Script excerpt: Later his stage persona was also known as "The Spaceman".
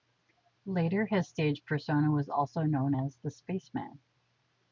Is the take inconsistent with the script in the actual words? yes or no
no